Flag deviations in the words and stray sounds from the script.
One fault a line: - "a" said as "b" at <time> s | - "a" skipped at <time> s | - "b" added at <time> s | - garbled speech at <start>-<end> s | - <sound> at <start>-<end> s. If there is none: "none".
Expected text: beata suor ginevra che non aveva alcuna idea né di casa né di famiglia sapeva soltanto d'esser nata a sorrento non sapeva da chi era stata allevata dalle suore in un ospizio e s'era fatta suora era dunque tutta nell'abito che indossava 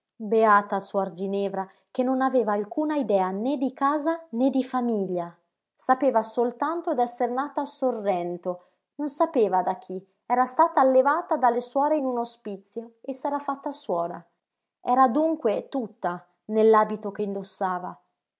none